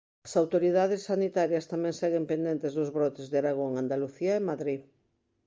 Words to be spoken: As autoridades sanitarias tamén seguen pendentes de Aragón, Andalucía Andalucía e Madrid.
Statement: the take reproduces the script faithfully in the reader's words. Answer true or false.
false